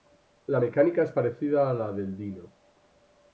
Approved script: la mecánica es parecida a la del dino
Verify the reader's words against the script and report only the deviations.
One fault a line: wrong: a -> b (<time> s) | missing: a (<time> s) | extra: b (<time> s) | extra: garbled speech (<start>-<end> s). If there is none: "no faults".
no faults